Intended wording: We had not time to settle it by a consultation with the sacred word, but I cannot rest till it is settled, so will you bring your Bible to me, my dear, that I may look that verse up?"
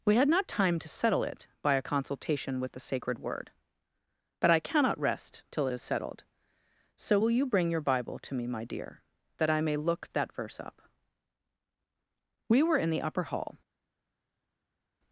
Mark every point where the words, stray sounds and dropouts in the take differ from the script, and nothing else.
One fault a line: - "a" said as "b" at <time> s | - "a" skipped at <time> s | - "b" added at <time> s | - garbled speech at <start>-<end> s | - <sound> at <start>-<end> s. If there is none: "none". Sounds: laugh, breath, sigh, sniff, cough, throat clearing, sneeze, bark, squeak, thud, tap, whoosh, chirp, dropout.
- "We were in the upper hall" added at 12.5 s